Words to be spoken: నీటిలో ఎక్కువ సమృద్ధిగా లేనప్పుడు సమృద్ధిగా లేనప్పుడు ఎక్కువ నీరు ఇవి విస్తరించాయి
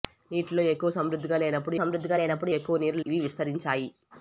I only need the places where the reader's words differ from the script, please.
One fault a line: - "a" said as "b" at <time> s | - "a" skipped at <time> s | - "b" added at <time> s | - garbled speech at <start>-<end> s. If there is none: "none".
none